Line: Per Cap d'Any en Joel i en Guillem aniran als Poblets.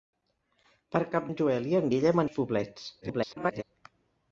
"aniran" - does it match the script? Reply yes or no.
no